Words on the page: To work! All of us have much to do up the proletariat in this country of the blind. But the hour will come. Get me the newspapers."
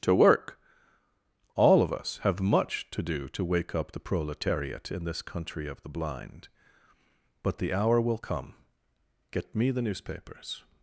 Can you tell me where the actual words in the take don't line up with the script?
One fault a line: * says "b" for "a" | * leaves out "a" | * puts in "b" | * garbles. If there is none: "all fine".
* puts in "to wake"